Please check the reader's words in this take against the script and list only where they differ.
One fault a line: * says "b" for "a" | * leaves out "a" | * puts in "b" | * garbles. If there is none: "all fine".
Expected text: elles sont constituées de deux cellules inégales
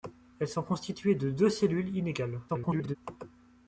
* garbles